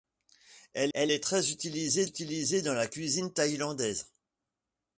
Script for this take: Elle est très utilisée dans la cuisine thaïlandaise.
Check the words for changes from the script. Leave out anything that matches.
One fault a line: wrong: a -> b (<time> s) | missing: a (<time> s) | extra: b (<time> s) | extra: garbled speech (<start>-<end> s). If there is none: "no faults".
extra: elle (0.9 s)
extra: utilisée (2.0 s)